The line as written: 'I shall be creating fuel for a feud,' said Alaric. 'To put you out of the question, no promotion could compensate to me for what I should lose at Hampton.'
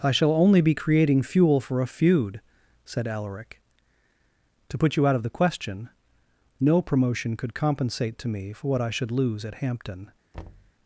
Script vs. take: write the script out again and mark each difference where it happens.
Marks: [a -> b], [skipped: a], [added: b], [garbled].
'I shall [added: only] be creating fuel for a feud,' said Alaric. 'To put you out of the question, no promotion could compensate to me for what I should lose at Hampton.'